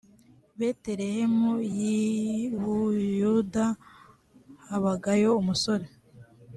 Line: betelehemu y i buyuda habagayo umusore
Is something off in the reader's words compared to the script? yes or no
no